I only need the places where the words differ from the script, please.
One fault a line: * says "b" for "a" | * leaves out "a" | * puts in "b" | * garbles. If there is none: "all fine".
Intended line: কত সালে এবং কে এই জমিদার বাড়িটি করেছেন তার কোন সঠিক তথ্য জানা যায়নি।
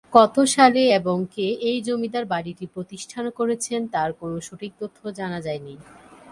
* puts in "প্রতিষ্ঠা"